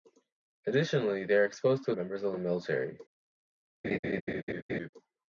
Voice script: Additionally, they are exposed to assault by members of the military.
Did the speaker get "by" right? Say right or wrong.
wrong